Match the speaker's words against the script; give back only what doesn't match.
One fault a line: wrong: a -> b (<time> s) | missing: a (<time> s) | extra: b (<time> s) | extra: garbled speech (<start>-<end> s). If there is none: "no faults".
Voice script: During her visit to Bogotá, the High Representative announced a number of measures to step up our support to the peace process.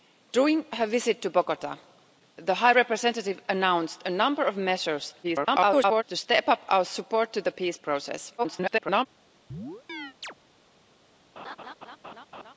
extra: garbled speech (5.2-6.0 s)
extra: garbled speech (8.4-9.1 s)